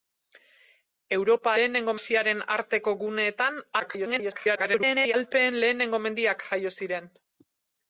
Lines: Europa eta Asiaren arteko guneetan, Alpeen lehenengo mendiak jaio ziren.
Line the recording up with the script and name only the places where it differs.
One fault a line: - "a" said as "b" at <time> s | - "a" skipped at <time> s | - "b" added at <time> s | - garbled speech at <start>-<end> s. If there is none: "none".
- "eta" said as "lehenengo" at 1.6 s
- garbled speech at 3.8-5.1 s